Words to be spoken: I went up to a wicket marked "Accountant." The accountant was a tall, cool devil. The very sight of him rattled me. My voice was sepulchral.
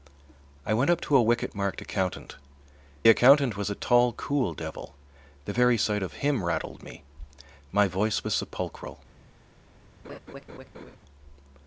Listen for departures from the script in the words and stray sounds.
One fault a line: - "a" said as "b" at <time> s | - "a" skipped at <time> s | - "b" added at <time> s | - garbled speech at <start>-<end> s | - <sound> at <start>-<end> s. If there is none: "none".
- "The" skipped at 2.4 s
- laugh at 10.0-11.0 s